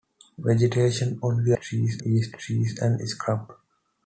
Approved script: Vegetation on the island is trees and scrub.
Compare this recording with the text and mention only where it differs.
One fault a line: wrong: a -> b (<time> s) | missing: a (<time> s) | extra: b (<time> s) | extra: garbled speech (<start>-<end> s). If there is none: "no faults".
wrong: island -> trees (1.5 s)